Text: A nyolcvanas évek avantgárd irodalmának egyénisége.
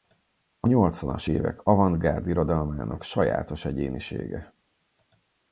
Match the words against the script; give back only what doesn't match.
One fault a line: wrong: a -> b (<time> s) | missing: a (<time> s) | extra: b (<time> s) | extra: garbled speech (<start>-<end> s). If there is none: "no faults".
extra: sajátos (3.0 s)